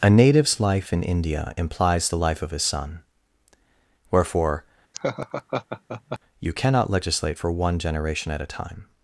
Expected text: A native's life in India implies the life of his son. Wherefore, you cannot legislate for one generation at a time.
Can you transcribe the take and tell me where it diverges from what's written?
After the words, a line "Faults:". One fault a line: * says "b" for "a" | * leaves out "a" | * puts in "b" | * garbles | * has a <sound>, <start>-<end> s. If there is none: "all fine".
A native's life in India implies the life of his son. Wherefore, you cannot legislate for one generation at a time.
Faults:
* has a laugh, 4.9-6.2 s